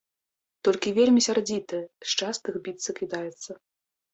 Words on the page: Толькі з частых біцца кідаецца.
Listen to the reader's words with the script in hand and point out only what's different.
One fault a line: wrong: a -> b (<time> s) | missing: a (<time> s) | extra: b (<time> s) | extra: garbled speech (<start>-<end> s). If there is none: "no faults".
extra: вельмі сярдзітая (1.0 s)